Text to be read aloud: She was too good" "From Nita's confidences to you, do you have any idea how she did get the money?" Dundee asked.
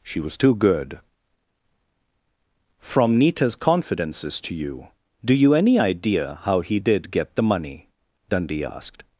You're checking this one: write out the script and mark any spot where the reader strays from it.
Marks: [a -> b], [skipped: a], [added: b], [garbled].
She was too good" "From Nita's confidences to you, do you [skipped: have] any idea how [she -> he] did get the money?" Dundee asked.